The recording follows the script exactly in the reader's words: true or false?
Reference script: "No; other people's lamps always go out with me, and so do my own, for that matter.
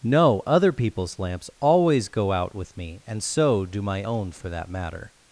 true